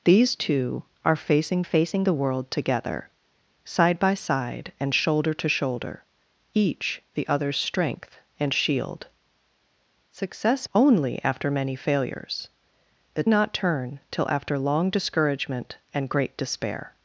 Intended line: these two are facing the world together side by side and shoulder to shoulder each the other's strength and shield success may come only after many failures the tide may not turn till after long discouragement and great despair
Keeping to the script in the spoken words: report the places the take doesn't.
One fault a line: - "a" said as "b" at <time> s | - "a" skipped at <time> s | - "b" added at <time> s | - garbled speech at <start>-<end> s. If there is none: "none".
- "facing" added at 1.6 s
- "may come" skipped at 10.7 s
- "tide may" skipped at 13.2 s